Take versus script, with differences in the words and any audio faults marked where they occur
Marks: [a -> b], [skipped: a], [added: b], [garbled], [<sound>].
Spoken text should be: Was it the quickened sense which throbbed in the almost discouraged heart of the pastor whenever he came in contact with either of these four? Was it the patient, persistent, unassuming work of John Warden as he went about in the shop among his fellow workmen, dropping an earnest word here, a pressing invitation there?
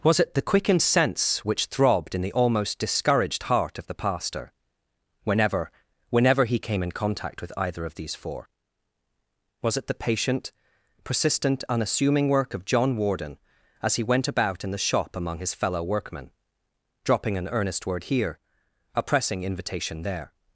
Was it the quickened sense which throbbed in the almost discouraged heart of the pastor whenever [added: whenever] he came in contact with either of these four? Was it the patient, persistent, unassuming work of John Warden as he went about in the shop among his fellow workmen, dropping an earnest word here, a pressing invitation there?